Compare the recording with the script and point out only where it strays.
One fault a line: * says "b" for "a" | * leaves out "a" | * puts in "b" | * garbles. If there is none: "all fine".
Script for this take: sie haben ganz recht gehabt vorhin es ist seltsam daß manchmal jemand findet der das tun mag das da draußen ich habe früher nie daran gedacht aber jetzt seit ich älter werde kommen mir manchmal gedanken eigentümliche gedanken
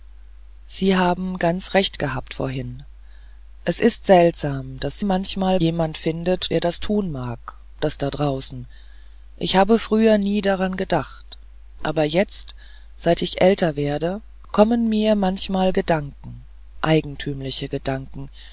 all fine